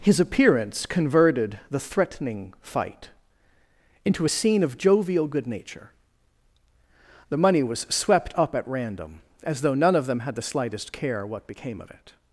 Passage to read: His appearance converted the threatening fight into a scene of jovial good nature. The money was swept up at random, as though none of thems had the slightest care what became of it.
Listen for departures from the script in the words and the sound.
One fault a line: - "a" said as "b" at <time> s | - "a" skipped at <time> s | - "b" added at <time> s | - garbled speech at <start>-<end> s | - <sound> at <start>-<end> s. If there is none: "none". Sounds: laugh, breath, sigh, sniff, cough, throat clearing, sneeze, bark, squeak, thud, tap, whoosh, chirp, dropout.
- "thems" said as "them" at 10.1 s